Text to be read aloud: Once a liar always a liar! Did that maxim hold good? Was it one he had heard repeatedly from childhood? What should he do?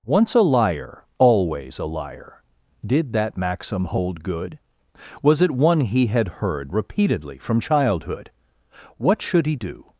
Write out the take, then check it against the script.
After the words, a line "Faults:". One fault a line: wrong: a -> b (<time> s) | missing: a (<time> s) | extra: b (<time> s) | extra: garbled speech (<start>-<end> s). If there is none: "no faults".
Once a liar always a liar! Did that maxim hold good? Was it one he had heard repeatedly from childhood? What should he do?
Faults:
no faults